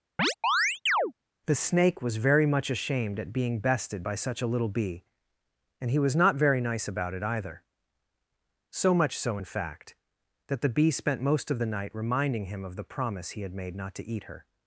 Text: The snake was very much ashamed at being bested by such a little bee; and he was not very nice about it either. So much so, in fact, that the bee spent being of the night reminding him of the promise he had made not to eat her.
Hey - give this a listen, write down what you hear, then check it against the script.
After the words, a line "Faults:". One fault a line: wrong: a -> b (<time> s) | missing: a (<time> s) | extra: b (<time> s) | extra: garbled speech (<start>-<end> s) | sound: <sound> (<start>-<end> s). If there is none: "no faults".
The snake was very much ashamed at being bested by such a little bee; and he was not very nice about it either. So much so, in fact, that the bee spent most of the night reminding him of the promise he had made not to eat her.
Faults:
sound: chirp (0.2-1.1 s)
wrong: being -> most (11.2 s)